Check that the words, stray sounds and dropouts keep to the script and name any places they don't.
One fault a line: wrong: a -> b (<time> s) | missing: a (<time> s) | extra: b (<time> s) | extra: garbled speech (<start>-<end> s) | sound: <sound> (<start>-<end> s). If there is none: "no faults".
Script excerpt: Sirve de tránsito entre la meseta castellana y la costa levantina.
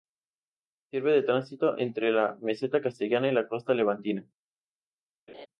sound: laugh (5.3-5.5 s)